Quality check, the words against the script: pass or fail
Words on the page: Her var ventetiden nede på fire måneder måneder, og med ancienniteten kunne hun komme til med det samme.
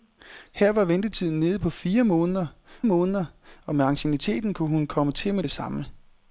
pass